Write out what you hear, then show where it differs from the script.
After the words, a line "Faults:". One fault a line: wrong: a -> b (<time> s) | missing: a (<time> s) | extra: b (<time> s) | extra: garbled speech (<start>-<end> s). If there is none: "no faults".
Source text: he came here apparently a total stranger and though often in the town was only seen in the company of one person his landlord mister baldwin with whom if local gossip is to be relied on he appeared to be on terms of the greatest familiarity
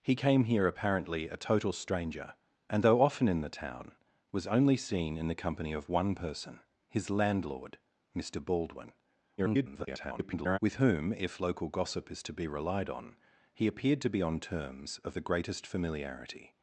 he came here apparently a total stranger and though often in the town was only seen in the company of one person his landlord mister baldwin [garbled] with whom if local gossip is to be relied on he appeared to be on terms of the greatest familiarity
Faults:
extra: garbled speech (9.4-10.6 s)